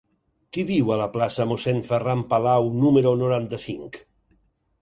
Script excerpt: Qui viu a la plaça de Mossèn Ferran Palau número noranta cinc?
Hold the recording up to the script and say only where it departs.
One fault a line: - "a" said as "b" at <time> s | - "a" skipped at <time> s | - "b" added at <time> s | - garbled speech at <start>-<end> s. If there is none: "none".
none